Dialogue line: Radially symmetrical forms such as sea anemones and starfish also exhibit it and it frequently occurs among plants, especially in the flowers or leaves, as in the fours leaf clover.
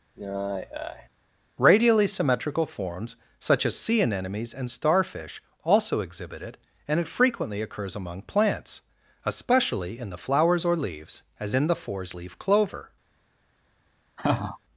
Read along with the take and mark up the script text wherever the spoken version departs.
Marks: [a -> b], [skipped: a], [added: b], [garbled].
Radially symmetrical forms such as sea anemones and starfish also exhibit it and it frequently occurs among plants, especially in the flowers or leaves, as in the fours leaf clover.